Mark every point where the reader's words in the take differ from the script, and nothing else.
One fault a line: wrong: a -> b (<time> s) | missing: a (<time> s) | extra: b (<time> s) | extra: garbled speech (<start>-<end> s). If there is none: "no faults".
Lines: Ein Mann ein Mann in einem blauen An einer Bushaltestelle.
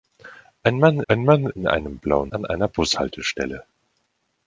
no faults